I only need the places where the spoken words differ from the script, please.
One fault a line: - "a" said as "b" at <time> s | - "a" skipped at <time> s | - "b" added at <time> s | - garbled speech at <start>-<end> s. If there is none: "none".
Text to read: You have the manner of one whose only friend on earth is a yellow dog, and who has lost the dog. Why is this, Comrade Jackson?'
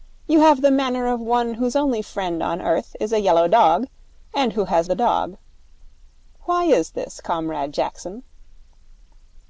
- "lost" skipped at 4.9 s